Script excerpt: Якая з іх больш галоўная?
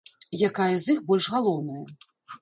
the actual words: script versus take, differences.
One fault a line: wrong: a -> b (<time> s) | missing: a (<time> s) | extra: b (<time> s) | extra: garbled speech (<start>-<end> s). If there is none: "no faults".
no faults